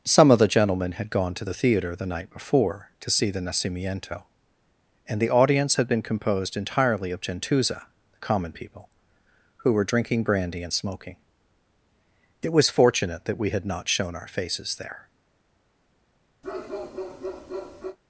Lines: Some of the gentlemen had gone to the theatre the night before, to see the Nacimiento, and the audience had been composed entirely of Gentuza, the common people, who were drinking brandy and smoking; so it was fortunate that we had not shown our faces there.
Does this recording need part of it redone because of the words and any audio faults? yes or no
yes